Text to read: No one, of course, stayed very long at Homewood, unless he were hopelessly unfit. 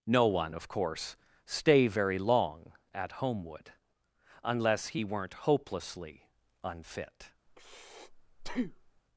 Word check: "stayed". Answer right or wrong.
wrong